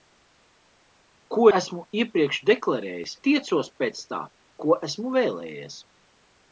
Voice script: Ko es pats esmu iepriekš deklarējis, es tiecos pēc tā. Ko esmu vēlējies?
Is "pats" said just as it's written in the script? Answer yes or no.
no